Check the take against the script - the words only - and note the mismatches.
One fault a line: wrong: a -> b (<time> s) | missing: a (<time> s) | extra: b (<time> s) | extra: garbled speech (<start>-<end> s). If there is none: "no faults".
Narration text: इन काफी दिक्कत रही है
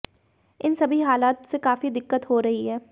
extra: सभी हालात से (0.8 s)
extra: हो (2.3 s)